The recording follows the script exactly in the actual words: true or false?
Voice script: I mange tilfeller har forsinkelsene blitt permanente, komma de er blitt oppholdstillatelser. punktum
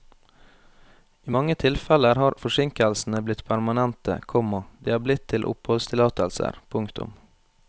false